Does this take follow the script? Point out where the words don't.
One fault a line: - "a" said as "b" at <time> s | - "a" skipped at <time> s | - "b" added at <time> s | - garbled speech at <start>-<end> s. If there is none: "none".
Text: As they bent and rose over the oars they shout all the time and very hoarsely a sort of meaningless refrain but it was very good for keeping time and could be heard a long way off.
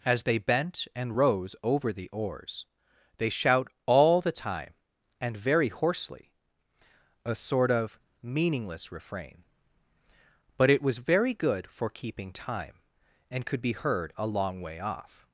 none